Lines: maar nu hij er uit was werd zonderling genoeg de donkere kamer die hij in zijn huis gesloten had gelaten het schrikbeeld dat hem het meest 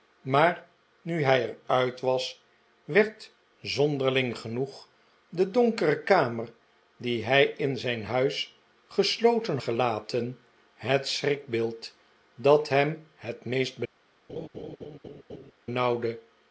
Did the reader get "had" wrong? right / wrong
wrong